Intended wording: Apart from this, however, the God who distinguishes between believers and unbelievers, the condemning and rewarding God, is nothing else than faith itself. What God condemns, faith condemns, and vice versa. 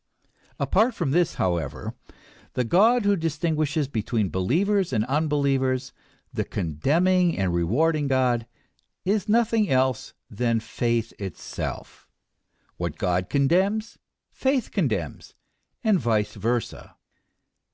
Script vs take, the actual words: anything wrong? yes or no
no